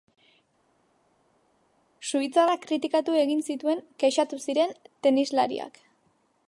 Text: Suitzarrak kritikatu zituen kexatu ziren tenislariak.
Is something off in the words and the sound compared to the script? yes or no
yes